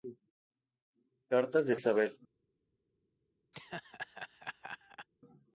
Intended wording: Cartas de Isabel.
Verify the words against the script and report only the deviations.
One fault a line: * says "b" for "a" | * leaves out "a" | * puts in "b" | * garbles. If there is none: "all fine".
all fine